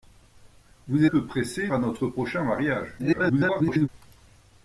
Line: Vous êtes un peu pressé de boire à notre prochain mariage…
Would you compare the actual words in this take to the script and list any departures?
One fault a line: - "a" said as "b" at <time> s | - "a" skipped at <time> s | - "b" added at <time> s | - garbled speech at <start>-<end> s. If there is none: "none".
- "êtes un" skipped at 1.1 s
- "de boire" skipped at 1.7 s
- garbled speech at 3.0-3.9 s